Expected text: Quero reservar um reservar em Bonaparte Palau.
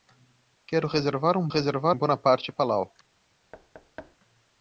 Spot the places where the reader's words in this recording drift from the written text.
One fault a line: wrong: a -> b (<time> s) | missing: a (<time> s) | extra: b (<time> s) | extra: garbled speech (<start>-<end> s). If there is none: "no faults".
no faults